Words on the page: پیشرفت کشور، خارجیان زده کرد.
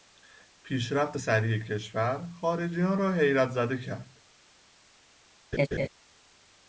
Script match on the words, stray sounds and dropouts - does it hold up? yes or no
no